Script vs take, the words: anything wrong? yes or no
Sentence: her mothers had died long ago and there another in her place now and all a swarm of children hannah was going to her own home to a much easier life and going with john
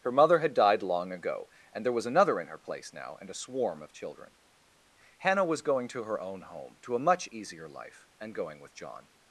yes